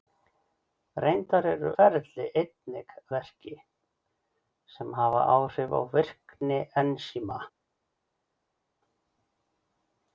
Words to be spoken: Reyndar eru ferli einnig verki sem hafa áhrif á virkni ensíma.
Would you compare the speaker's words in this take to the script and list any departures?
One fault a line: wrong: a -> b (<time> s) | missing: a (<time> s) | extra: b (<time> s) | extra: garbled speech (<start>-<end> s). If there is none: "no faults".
no faults